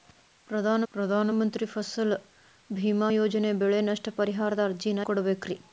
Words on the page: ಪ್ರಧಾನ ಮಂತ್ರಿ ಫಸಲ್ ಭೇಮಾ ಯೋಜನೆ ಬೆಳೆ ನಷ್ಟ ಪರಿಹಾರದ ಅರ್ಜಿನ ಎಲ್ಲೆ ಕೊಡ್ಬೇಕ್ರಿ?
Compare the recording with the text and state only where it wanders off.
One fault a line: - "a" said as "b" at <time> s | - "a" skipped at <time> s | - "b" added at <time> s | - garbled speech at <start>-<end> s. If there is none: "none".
- "ಪ್ರಧಾನ" added at 0.9 s
- "ಎಲ್ಲೆ" skipped at 5.0 s